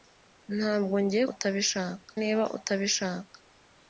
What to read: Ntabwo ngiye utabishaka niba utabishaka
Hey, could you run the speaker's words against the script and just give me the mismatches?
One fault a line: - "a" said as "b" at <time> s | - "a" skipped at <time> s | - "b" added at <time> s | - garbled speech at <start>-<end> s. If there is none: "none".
none